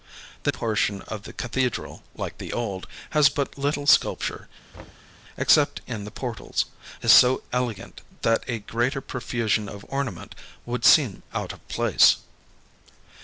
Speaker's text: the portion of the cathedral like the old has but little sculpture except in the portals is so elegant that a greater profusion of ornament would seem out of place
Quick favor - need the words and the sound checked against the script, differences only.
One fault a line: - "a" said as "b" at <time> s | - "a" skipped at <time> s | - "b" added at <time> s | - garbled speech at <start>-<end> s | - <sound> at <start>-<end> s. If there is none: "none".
- thud at 4.7-5.1 s